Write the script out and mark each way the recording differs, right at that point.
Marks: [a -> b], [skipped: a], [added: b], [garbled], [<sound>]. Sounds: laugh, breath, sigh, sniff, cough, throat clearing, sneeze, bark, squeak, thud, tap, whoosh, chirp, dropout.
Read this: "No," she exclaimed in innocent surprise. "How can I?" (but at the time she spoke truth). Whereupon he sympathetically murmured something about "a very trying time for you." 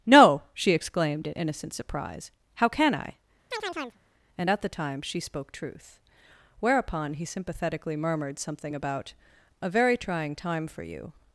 "No," she exclaimed in innocent surprise. "How can I?" [chirp] [(but -> and] at the time she spoke truth). Whereupon he sympathetically murmured something about "a very trying time for you."